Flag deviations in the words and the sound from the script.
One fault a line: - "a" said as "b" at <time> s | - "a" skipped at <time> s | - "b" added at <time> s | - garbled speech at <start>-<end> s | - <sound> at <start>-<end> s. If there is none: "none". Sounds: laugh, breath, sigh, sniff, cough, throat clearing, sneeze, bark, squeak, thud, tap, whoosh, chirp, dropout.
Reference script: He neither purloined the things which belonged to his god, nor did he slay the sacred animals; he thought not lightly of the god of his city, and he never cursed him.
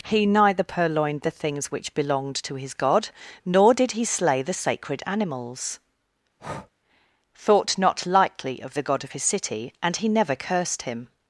- "he" skipped at 5.8 s
- breath at 6.4-6.7 s